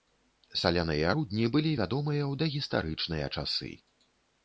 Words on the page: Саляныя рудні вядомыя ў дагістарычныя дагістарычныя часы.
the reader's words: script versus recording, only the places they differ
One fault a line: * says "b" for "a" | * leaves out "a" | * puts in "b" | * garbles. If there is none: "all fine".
* puts in "былі"
* leaves out "дагістарычныя"